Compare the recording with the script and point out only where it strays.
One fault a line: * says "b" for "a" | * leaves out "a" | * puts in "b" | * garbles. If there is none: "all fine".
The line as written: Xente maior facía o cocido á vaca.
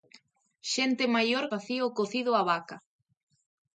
all fine